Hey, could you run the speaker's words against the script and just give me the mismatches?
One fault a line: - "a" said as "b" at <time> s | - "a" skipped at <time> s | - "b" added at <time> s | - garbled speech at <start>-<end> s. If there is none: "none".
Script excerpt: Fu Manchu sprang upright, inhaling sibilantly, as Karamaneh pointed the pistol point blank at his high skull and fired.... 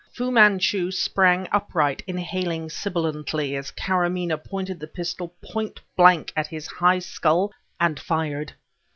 none